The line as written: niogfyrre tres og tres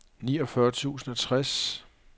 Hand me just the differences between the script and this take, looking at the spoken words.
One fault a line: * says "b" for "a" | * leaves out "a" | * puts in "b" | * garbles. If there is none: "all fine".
* says "tusind" for "tres"